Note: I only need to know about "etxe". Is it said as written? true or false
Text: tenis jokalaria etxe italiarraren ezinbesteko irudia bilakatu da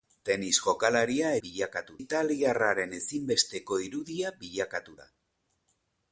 false